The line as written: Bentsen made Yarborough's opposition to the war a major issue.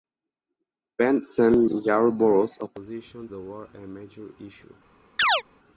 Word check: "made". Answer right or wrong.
wrong